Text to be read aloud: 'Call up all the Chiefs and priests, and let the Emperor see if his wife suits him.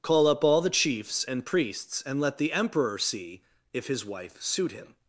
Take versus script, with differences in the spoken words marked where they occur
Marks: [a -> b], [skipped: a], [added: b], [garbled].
'Call up all the Chiefs and priests, and let the Emperor see if his wife [suits -> suit] him.